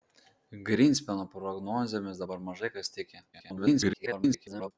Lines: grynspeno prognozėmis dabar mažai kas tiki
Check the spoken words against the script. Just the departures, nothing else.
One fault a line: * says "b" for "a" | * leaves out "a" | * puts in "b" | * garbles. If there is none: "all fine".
* garbles